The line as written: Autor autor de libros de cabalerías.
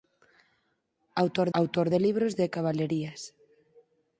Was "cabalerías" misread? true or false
false